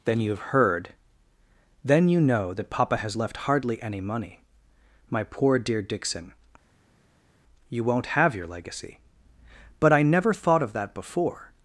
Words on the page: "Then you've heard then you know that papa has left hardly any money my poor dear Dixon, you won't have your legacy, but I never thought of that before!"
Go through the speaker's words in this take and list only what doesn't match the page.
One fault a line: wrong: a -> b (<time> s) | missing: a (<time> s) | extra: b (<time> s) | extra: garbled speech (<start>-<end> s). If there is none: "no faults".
no faults